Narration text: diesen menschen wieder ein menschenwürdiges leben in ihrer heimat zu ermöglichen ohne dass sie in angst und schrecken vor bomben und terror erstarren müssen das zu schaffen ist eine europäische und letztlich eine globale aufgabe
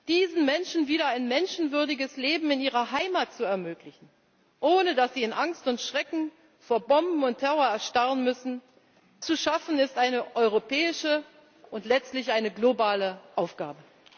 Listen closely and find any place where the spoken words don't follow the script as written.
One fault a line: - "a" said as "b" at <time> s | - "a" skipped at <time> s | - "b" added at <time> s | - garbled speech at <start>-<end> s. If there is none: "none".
- "das" skipped at 8.6 s